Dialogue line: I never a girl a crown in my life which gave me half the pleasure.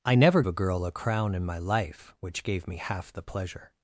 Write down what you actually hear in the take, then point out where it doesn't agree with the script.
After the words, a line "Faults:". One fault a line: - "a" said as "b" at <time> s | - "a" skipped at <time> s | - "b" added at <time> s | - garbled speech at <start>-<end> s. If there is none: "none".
I never a girl a crown in my life which gave me half the pleasure.
Faults:
none